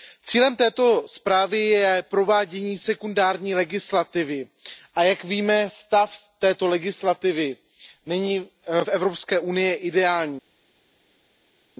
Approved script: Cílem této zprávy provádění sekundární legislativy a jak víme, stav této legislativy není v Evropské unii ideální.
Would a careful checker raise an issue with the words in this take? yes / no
yes